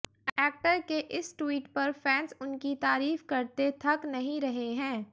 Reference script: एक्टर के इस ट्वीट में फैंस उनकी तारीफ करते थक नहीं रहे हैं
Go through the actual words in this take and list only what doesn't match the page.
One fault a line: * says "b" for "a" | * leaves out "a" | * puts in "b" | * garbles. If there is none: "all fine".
* says "पर" for "में"